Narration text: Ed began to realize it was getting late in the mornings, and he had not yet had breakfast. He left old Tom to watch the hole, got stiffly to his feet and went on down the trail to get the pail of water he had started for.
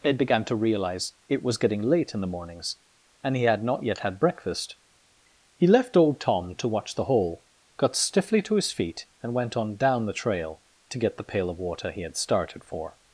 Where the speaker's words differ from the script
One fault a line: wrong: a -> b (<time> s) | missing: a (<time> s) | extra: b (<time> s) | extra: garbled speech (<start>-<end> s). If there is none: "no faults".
no faults